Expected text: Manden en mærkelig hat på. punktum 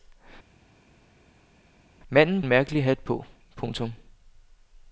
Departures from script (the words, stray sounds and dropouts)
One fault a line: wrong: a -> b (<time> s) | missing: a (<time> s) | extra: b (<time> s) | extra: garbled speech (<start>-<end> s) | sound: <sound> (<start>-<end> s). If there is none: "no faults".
no faults